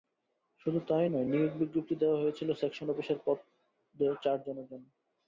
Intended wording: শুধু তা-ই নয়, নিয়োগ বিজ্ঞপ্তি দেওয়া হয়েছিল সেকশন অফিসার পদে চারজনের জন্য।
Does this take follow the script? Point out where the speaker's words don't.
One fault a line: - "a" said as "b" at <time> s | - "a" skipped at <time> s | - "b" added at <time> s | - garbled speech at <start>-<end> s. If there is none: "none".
none